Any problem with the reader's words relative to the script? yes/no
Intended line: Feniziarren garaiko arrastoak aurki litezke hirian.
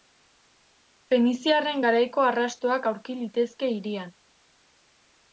no